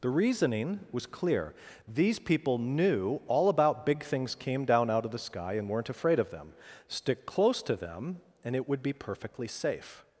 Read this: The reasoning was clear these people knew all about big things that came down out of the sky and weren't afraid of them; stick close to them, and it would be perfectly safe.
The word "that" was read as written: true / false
false